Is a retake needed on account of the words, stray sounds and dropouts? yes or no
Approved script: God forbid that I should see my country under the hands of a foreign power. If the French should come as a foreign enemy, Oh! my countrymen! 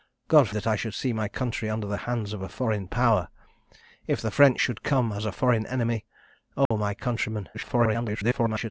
yes